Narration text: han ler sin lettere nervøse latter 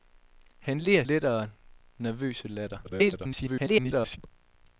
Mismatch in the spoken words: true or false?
true